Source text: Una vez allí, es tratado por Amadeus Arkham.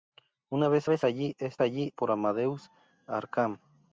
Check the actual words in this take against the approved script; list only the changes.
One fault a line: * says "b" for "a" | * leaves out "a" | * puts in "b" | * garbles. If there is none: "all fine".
* puts in "vez"
* says "allí" for "tratado"